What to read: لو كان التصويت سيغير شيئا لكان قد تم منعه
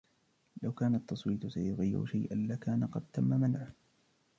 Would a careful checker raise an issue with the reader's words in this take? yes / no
no